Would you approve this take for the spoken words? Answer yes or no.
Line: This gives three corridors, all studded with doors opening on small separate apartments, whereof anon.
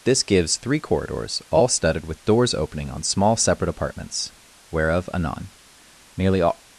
no